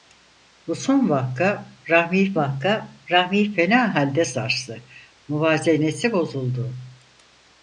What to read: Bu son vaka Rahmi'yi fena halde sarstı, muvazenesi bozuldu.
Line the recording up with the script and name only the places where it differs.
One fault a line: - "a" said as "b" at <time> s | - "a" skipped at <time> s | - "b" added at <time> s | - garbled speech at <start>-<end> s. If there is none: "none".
- "vaka Rahmi'yi" added at 2.4 s